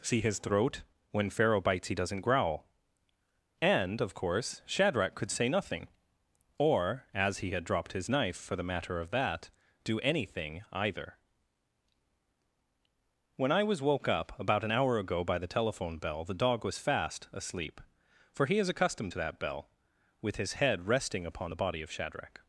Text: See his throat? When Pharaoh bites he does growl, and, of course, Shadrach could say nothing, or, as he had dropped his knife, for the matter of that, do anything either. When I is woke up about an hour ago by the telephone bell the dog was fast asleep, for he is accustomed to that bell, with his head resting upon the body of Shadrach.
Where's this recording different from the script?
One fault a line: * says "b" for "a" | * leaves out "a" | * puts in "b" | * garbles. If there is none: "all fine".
* says "doesn't" for "does"
* says "was" for "is"